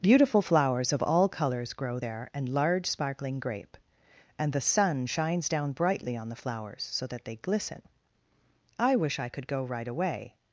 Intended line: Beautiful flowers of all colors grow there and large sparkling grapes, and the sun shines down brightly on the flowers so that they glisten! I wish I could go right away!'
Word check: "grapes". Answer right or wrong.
wrong